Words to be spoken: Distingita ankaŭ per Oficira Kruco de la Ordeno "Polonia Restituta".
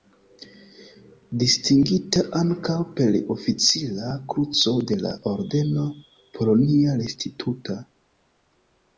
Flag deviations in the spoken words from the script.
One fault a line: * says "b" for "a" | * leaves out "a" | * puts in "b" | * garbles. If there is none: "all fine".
all fine